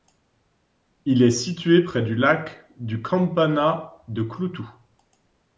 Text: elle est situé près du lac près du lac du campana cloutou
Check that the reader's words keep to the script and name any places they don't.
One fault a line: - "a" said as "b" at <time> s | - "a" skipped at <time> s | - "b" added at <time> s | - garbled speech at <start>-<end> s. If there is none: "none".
- "elle" said as "il" at 1.1 s
- "près" skipped at 2.6 s
- "lac du campana" said as "campana de" at 3.0 s